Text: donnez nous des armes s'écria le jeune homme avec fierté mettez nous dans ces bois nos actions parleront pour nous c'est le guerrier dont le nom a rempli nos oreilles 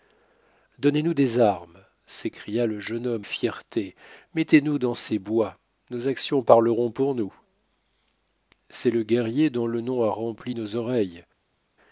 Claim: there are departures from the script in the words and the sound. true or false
true